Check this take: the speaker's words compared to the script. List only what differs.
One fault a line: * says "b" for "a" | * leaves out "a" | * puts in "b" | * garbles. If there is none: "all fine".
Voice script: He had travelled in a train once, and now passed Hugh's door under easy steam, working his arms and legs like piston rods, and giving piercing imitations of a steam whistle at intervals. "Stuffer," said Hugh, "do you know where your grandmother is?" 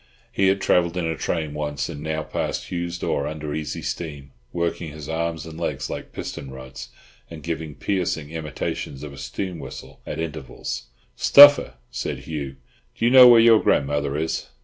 all fine